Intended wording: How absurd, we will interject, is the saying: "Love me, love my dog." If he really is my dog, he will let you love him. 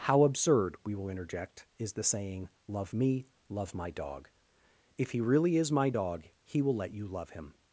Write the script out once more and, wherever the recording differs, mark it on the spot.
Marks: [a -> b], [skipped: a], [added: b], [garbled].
How absurd, we will interject, is the saying: "Love me, love my dog." If he really is my dog, he will let you love him.